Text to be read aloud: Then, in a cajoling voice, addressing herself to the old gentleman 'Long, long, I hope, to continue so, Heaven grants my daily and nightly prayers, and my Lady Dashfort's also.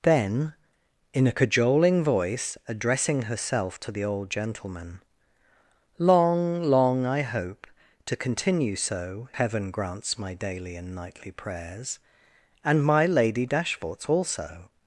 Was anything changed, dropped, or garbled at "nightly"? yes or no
no